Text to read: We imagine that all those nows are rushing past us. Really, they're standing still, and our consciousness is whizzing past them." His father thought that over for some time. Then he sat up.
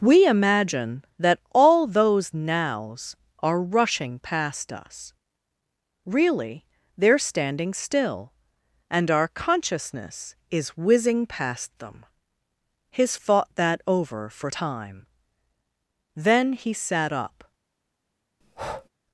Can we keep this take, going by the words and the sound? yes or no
no